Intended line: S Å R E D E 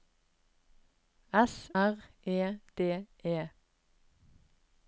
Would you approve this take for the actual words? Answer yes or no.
no